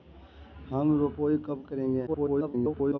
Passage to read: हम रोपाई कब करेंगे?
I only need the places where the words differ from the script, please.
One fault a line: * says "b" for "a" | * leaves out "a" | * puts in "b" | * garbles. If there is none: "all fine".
* garbles